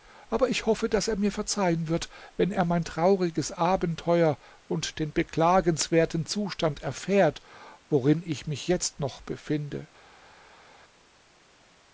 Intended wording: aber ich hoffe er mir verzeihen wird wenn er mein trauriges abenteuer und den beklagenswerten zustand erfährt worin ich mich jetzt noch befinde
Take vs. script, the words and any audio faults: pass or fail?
fail